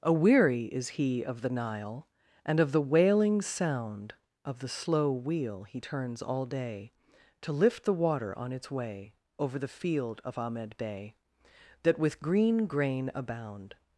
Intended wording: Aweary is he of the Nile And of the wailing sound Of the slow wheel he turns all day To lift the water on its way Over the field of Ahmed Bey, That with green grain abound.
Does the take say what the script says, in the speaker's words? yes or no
yes